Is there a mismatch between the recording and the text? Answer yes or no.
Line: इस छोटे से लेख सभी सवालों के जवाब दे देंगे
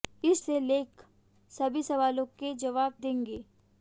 yes